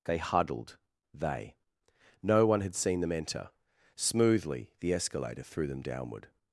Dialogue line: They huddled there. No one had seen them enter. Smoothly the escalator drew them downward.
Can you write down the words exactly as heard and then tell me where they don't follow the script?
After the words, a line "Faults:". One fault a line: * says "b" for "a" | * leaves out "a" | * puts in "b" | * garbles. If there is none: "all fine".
They huddled they. No one had seen them enter. Smoothly the escalator threw them downward.
Faults:
* says "they" for "there"
* says "threw" for "drew"